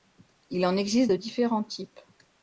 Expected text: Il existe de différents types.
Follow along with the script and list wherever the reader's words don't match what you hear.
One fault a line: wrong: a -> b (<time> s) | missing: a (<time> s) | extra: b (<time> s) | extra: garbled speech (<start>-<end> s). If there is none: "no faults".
extra: en (0.7 s)